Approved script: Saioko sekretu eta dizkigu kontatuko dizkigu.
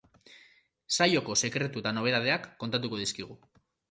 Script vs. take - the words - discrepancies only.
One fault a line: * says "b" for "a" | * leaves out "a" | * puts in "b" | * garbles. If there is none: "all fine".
* says "nobedadeak" for "dizkigu"